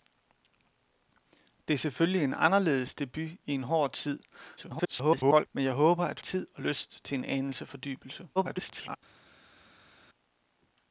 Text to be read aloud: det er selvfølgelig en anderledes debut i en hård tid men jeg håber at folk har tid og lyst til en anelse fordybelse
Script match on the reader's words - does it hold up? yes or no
no